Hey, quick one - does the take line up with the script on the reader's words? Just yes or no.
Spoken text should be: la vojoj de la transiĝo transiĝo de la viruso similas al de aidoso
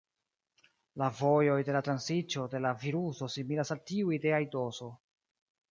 no